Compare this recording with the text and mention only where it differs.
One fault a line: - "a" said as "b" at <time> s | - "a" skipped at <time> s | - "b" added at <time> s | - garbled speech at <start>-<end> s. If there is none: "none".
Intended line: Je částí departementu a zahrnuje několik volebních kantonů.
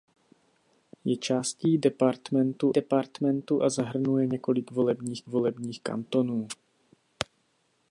- "departementu" added at 2.7 s
- "volebních" added at 5.3 s